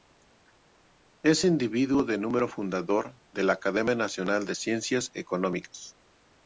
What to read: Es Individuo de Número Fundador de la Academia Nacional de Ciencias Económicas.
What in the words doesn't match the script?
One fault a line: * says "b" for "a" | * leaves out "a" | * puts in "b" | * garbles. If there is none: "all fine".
all fine